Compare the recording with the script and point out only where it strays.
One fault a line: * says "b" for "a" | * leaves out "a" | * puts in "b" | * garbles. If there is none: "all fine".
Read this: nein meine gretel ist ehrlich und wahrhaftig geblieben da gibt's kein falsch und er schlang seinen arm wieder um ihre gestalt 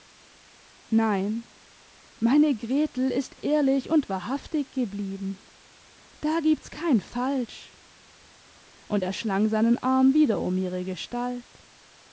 all fine